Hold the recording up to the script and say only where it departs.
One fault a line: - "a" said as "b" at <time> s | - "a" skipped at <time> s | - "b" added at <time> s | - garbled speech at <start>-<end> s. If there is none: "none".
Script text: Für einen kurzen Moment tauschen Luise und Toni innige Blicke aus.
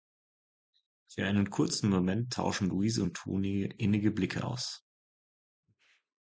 none